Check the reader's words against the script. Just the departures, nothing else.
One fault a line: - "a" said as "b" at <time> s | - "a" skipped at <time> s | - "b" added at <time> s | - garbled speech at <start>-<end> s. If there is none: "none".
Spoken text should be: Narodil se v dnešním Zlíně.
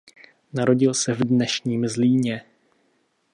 none